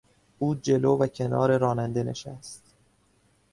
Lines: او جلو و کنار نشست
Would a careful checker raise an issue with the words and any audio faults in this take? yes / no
yes